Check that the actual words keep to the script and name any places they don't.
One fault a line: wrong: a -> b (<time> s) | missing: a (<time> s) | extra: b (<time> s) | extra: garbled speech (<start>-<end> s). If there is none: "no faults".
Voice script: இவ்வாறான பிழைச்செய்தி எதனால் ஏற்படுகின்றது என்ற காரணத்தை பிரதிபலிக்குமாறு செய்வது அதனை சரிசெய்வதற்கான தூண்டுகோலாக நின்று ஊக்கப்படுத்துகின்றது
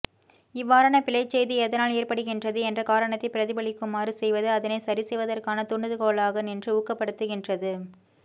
no faults